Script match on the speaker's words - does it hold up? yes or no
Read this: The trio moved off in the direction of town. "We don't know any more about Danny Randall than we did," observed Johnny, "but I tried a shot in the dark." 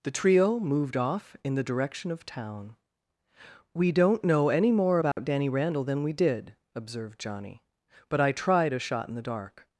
yes